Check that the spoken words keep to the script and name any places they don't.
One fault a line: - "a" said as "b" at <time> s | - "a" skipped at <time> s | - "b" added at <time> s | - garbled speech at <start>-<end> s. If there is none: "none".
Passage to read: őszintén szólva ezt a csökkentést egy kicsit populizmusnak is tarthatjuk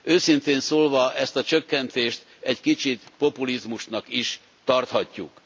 none